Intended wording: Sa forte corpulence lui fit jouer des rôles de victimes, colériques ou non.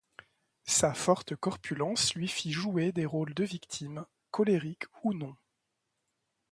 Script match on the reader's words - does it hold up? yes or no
yes